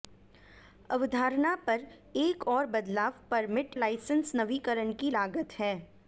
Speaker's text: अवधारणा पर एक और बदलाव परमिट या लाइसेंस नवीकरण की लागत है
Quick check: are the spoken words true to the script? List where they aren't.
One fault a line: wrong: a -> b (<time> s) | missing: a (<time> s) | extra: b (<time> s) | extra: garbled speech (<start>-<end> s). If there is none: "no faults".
missing: या (3.8 s)